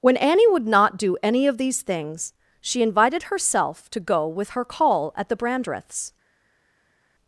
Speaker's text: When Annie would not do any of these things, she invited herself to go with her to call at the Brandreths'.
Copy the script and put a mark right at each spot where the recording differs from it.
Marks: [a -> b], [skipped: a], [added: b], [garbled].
When Annie would not do any of these things, she invited herself to go with her [skipped: to] call at the Brandreths'.